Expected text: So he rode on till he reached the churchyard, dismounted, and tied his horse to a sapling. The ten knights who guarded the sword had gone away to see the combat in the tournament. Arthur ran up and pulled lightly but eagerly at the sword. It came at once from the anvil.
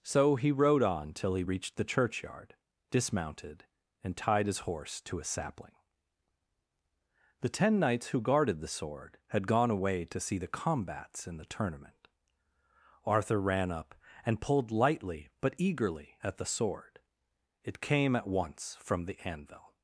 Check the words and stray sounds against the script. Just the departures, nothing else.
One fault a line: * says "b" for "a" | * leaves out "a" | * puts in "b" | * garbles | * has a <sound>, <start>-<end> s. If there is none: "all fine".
* says "combats" for "combat"